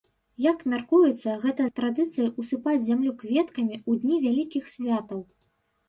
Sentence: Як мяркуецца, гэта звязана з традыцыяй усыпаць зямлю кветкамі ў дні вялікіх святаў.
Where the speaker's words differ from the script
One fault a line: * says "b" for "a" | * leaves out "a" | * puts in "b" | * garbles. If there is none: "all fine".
* leaves out "звязана"